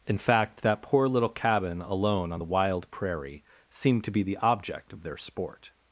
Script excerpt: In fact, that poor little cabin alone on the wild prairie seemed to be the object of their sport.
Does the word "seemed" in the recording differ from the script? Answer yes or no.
no